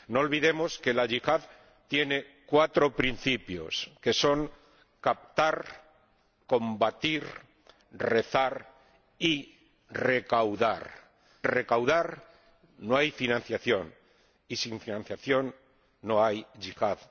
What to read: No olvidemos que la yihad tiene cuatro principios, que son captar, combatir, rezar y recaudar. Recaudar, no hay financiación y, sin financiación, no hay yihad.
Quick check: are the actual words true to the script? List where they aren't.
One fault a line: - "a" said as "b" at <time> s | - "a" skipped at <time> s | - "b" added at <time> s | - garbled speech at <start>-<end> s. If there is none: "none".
none